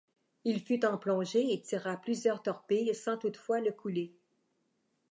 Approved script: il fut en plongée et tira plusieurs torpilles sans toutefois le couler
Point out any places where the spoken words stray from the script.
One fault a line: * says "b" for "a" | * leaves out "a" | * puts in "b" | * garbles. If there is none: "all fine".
all fine